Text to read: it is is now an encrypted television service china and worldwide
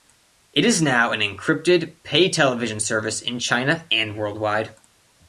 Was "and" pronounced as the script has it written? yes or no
yes